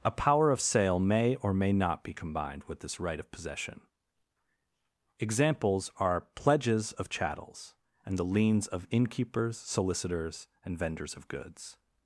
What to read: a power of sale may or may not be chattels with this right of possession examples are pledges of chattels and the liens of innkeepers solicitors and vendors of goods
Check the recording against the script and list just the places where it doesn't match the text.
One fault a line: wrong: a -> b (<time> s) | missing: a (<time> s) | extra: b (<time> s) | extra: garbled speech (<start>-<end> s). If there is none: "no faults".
wrong: chattels -> combined (2.1 s)